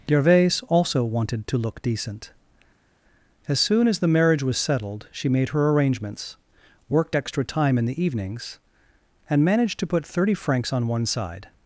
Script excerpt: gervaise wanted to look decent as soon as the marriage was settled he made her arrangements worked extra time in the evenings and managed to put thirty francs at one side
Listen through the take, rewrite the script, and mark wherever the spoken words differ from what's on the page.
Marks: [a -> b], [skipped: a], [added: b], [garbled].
gervaise [added: also] wanted to look decent as soon as the marriage was settled [he -> she] made her arrangements worked extra time in the evenings and managed to put thirty francs [at -> on] one side